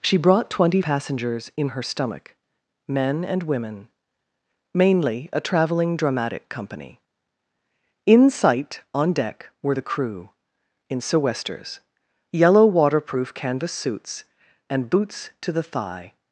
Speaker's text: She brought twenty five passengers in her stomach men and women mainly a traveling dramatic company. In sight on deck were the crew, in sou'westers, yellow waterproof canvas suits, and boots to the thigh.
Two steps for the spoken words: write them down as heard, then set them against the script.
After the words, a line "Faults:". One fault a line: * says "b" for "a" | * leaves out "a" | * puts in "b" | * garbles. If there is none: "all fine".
She brought twenty passengers in her stomach men and women mainly a traveling dramatic company. In sight on deck were the crew, in sou'westers, yellow waterproof canvas suits, and boots to the thigh.
Faults:
* leaves out "five"